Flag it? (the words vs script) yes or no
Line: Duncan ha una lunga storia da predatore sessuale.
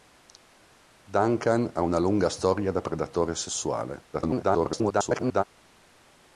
yes